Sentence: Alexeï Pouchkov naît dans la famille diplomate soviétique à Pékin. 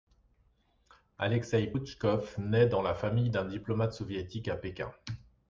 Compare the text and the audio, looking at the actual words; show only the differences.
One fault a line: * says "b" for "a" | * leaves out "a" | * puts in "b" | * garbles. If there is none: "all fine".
* puts in "d'un"